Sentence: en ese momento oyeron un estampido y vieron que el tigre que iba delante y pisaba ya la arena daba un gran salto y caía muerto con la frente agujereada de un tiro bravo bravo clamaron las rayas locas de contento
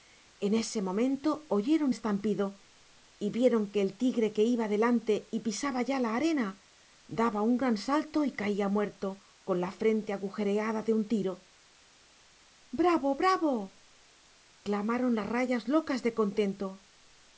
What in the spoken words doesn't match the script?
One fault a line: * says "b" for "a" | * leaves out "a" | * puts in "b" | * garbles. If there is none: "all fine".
* leaves out "un"